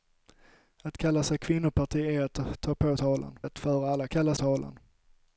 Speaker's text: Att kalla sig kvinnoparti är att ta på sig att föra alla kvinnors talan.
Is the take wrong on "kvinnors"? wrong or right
wrong